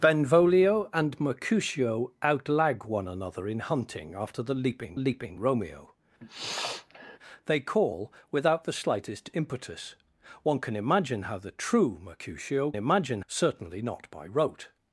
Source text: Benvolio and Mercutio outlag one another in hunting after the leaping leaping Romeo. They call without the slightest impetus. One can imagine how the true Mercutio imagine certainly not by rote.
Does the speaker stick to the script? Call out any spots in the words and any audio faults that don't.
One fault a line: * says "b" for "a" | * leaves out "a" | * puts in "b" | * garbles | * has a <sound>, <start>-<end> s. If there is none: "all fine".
* has a sniff, 6.2-7.2 s